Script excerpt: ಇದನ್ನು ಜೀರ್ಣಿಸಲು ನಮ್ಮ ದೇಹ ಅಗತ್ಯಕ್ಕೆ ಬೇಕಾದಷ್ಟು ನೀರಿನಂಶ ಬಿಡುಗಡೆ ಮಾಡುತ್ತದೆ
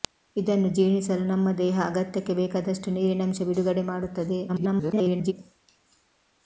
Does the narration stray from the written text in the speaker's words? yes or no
yes